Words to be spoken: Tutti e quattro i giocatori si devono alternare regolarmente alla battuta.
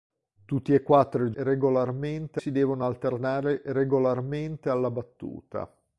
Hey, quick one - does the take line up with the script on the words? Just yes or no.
no